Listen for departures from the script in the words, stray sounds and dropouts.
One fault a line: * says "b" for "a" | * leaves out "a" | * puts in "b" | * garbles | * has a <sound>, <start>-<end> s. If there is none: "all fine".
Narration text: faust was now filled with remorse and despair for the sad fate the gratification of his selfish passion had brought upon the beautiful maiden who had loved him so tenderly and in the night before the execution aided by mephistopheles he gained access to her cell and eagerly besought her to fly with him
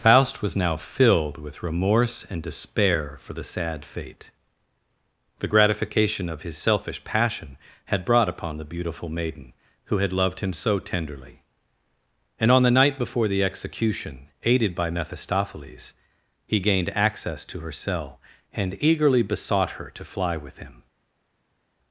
* says "on" for "in"